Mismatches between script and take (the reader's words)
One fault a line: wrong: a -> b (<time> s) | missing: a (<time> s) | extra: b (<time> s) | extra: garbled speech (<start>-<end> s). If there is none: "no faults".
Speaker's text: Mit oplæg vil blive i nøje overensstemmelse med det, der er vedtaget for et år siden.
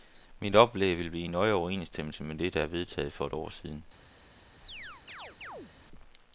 no faults